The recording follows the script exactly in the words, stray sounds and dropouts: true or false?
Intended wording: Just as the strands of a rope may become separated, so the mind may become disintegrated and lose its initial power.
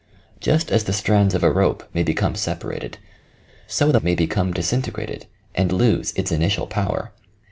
false